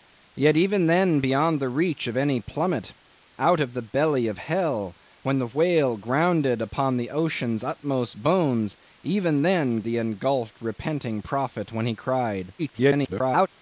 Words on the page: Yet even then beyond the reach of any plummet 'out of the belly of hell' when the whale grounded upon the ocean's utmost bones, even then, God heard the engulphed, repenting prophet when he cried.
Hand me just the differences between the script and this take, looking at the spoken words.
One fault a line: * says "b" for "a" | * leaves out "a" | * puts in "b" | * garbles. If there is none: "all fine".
* leaves out "God heard"
* garbles